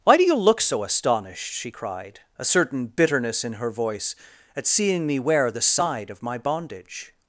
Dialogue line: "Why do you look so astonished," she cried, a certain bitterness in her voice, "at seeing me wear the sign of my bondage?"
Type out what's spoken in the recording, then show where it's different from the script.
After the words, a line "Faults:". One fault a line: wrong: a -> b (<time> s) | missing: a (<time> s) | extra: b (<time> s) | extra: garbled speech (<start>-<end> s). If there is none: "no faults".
"Why do you look so astonished," she cried, a certain bitterness in her voice, "at seeing me wear the side of my bondage?"
Faults:
wrong: sign -> side (5.6 s)